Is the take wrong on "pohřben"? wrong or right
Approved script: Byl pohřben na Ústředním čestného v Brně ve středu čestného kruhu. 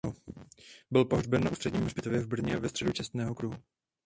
right